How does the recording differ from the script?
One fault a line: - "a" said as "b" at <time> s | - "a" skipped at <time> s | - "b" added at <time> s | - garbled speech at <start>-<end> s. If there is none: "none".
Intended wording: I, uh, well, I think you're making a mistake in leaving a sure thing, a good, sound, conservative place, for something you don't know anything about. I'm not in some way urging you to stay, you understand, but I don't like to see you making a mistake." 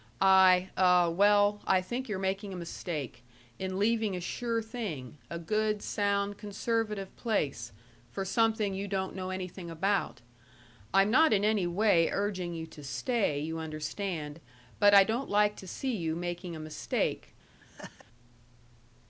- "some" said as "any" at 11.4 s